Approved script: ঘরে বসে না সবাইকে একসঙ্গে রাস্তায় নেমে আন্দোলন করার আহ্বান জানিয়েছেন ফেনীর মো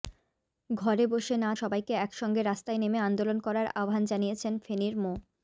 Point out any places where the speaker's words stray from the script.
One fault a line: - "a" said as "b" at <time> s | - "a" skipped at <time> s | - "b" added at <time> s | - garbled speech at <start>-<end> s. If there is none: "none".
none